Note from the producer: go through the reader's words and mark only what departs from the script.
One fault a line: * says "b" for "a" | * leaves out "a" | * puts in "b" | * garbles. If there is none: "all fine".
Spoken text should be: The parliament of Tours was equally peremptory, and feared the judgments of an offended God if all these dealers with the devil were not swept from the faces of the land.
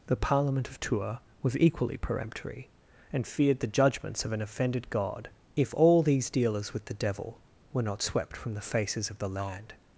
all fine